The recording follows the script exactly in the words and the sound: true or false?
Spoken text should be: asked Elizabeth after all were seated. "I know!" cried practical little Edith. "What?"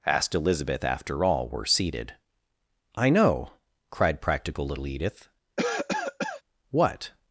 false